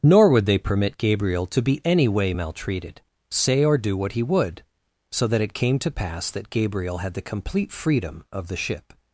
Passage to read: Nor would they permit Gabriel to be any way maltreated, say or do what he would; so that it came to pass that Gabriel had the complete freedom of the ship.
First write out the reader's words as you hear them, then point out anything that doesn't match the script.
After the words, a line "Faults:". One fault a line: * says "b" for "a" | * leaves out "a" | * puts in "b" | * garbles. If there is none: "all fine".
Nor would they permit Gabriel to be any way maltreated, say or do what he would; so that it came to pass that Gabriel had the complete freedom of the ship.
Faults:
all fine